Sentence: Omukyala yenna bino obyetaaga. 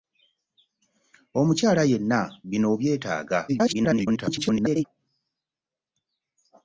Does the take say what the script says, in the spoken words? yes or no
no